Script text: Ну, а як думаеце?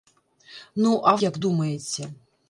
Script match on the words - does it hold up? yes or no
yes